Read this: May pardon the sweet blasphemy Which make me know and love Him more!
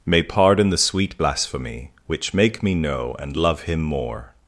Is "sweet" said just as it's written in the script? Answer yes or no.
yes